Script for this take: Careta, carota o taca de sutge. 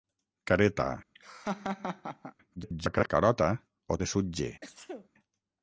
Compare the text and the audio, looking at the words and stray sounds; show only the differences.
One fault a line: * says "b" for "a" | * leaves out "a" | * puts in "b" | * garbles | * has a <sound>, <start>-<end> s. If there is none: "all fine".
* has a laugh, 1.1-2.3 s
* garbles
* leaves out "taca"
* has a sneeze, 4.6-5.1 s